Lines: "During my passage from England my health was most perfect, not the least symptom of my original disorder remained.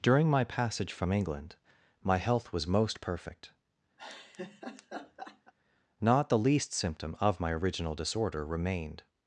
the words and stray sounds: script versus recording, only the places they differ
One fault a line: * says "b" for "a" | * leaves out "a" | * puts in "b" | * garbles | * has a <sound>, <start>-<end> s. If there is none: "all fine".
* has a laugh, 4.0-5.5 s